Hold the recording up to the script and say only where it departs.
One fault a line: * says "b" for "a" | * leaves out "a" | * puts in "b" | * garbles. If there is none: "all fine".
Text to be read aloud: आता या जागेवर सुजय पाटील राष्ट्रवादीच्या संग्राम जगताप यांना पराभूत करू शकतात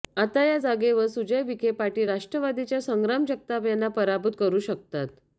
* puts in "विखे"